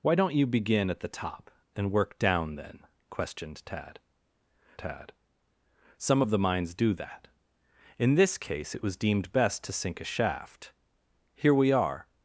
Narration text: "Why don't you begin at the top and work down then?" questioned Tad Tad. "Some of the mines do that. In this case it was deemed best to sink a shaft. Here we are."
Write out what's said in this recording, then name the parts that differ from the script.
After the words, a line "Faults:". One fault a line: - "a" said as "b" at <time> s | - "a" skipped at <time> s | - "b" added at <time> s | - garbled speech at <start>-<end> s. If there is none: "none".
"Why don't you begin at the top and work down then?" questioned Tad Tad. "Some of the mines do that. In this case it was deemed best to sink a shaft. Here we are."
Faults:
none